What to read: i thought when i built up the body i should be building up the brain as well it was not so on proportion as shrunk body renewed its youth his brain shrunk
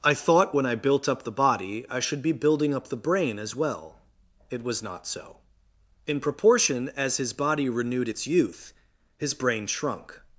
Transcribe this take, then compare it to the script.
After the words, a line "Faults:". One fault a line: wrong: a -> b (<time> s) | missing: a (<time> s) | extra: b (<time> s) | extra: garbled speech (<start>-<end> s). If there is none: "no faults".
i thought when i built up the body i should be building up the brain as well it was not so in proportion as his body renewed its youth his brain shrunk
Faults:
wrong: on -> in (6.1 s)
wrong: shrunk -> his (7.2 s)